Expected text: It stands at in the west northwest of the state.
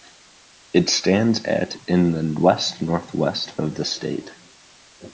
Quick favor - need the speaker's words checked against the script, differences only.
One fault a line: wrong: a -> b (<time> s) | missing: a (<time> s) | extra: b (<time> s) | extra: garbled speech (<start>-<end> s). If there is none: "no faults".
no faults